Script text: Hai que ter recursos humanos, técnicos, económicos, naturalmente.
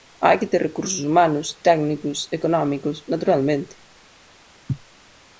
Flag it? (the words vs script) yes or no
no